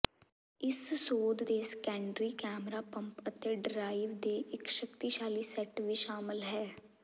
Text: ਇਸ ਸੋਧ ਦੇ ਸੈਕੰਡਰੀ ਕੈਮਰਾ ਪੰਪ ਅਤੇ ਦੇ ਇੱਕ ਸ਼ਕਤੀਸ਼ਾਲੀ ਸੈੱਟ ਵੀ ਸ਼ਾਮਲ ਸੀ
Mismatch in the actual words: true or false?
true